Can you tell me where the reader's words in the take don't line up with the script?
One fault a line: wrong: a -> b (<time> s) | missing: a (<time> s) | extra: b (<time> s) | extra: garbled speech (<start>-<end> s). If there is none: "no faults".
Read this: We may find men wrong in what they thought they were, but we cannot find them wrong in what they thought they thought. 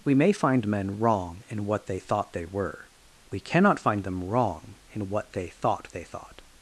missing: but (2.9 s)